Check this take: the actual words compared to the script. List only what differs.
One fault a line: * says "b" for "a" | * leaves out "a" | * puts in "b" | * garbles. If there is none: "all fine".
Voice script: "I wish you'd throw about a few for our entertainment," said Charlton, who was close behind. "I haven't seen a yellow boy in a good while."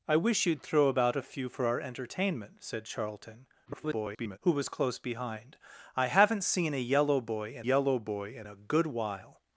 * garbles
* puts in "yellow boy in"